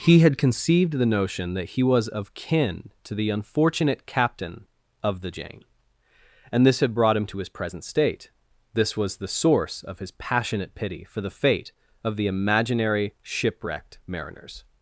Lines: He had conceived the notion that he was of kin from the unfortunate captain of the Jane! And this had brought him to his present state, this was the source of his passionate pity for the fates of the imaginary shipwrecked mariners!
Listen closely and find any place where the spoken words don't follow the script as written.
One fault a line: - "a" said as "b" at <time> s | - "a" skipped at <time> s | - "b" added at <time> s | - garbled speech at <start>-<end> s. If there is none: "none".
- "from" said as "to" at 3.0 s
- "fates" said as "fate" at 11.3 s